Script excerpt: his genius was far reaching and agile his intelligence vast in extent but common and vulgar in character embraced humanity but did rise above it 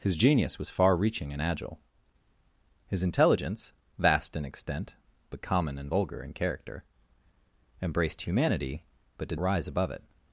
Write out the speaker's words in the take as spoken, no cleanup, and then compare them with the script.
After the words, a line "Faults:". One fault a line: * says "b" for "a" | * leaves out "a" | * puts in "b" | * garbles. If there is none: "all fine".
his genius was far reaching and agile his intelligence vast in extent but common and vulgar in character embraced humanity but did rise above it
Faults:
all fine